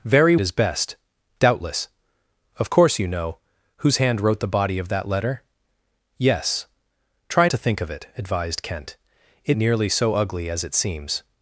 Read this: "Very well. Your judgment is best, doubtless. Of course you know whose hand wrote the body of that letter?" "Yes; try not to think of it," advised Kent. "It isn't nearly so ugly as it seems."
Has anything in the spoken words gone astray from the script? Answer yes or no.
yes